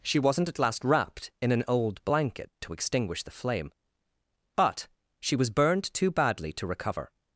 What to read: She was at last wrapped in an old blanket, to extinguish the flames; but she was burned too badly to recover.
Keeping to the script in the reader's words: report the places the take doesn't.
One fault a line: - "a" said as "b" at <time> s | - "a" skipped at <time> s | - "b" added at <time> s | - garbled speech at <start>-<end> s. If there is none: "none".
- "was" said as "wasn't" at 0.2 s
- "flames" said as "flame" at 3.3 s